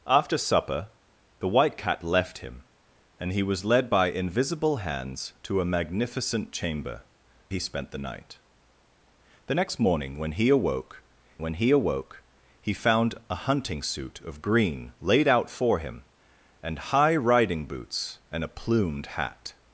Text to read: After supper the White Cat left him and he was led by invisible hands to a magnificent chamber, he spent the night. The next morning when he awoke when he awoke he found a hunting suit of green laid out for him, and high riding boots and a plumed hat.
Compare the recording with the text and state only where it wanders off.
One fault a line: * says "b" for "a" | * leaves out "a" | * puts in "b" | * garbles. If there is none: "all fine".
all fine